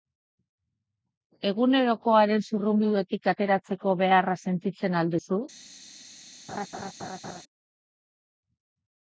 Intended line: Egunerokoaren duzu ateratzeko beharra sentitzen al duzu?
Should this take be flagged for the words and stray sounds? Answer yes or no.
yes